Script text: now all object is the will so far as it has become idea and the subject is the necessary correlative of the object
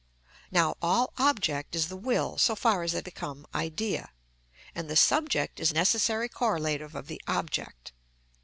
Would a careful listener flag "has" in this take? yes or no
yes